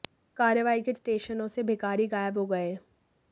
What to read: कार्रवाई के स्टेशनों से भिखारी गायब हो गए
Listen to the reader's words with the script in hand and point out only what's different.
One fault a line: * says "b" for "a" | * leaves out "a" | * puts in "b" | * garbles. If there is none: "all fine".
all fine